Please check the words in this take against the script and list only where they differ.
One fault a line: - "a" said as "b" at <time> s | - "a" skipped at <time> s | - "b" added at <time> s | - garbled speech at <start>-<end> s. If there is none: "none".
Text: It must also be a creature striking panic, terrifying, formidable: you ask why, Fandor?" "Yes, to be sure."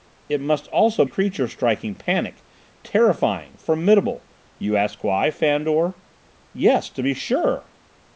- "be" skipped at 1.1 s